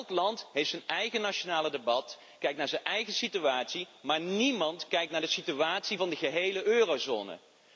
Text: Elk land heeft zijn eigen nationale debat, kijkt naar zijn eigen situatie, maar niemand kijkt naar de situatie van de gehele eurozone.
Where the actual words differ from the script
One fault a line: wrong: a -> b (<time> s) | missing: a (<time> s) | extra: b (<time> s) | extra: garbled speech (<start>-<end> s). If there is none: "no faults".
no faults